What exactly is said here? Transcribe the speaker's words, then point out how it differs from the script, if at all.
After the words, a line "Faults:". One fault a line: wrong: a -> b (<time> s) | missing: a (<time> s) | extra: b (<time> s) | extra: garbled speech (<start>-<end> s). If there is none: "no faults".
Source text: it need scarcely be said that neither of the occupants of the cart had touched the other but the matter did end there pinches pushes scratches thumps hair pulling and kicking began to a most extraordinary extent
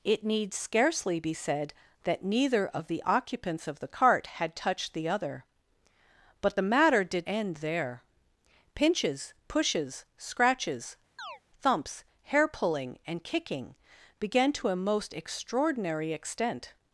it need scarcely be said that neither of the occupants of the cart had touched the other but the matter did end there pinches pushes scratches thumps hair pulling and kicking began to a most extraordinary extent
Faults:
no faults